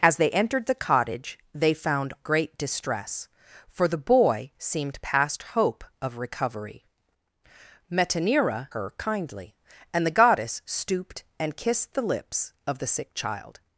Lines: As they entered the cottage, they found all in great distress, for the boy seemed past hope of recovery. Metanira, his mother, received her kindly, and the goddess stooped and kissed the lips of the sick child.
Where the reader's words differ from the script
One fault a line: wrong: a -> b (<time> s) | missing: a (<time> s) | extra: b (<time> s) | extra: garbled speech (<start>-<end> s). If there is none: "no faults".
missing: all in (2.1 s)
missing: his mother received (8.7 s)